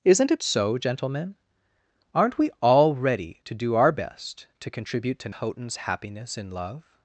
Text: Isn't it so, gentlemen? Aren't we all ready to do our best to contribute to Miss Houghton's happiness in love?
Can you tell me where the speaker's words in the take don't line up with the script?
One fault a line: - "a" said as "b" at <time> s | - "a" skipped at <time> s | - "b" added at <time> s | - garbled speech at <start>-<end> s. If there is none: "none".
- "Miss" skipped at 5.3 s